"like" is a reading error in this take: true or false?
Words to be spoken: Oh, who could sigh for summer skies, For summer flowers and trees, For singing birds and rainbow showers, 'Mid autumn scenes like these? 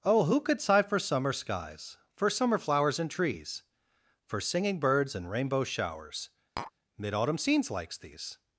true